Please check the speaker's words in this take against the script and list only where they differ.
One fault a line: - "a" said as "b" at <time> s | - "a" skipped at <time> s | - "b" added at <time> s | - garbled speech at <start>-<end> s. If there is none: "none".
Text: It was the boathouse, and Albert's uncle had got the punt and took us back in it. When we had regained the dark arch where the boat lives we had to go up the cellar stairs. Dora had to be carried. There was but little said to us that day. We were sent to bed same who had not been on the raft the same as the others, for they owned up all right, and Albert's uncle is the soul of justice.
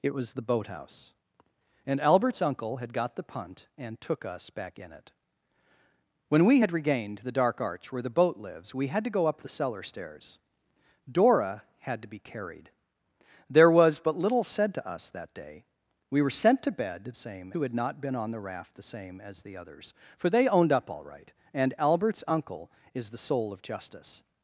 none